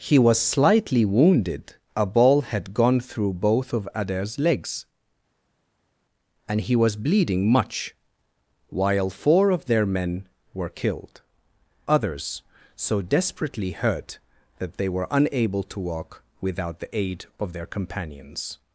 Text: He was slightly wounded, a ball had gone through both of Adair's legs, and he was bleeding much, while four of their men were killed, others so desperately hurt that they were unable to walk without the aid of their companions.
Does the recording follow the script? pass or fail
pass